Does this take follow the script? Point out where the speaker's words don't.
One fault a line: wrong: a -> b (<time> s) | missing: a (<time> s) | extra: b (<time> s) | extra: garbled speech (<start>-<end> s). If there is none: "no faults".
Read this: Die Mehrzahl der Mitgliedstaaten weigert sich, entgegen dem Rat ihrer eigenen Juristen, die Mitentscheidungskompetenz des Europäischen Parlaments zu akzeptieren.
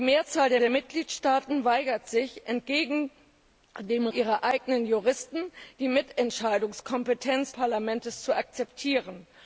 extra: der (0.6 s)
missing: Rat (4.1 s)
missing: des Europäischen (7.5 s)